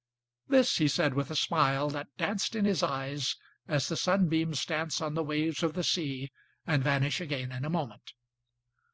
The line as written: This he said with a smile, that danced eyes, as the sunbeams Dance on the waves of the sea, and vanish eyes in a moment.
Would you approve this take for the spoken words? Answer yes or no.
no